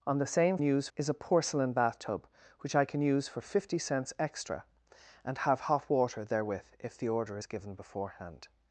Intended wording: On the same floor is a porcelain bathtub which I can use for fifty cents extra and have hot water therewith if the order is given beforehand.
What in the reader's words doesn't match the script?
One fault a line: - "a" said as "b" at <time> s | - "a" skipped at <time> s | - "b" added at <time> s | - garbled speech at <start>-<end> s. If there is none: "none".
- "floor" said as "use" at 0.6 s